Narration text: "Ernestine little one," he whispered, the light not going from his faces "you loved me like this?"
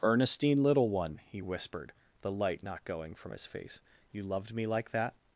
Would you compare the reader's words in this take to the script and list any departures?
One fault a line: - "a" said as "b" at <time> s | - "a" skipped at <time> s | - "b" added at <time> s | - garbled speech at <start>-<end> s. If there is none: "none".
- "faces" said as "face" at 3.4 s
- "this" said as "that" at 4.9 s